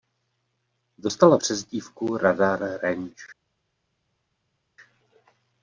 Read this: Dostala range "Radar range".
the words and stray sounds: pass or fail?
fail